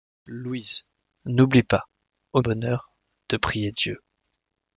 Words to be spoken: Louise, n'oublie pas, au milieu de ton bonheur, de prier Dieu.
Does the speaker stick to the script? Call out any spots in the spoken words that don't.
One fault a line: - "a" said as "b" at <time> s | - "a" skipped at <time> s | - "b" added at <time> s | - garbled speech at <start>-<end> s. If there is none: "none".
- "milieu de ton" skipped at 2.4 s